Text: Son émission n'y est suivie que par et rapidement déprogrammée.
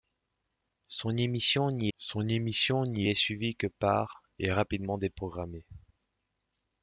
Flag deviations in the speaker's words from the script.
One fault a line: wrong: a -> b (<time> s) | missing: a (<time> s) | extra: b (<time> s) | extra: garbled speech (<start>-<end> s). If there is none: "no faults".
extra: son émission n'y (2.0 s)